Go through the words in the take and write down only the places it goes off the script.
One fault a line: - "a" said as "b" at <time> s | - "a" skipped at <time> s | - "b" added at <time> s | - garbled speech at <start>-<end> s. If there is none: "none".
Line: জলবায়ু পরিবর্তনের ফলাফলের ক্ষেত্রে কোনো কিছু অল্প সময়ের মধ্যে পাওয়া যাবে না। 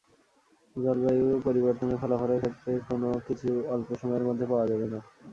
none